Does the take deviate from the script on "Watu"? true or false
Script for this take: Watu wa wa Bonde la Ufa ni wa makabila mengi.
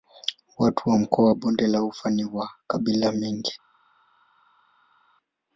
false